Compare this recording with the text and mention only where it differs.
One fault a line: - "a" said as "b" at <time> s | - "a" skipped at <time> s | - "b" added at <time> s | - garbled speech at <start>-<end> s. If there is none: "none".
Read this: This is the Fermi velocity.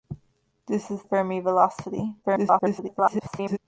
- "the" skipped at 1.0 s
- garbled speech at 2.2-3.6 s